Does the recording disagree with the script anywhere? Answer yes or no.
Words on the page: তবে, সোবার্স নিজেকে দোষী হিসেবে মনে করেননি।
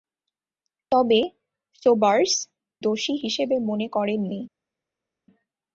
yes